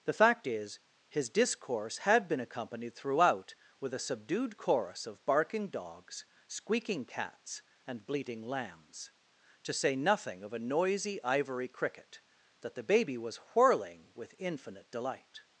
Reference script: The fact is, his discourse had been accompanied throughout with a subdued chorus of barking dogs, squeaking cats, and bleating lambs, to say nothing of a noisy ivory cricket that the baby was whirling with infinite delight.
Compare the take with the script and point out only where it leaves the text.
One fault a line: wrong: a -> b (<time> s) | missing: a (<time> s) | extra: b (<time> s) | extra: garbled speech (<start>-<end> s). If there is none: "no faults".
no faults